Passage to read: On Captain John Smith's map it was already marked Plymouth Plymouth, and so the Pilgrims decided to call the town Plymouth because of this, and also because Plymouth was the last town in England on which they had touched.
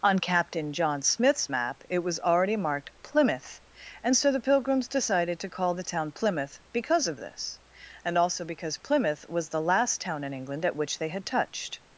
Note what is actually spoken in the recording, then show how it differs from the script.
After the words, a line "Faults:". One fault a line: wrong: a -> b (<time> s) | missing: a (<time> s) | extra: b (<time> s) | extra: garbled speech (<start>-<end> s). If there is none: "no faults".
On Captain John Smith's map it was already marked Plymouth, and so the Pilgrims decided to call the town Plymouth because of this, and also because Plymouth was the last town in England at which they had touched.
Faults:
missing: Plymouth (3.6 s)
wrong: on -> at (10.6 s)